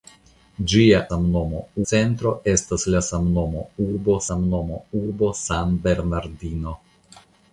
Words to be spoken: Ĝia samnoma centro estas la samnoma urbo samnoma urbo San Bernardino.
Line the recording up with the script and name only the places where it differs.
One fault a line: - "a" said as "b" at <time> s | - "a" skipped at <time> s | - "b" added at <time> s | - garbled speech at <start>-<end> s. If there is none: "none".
none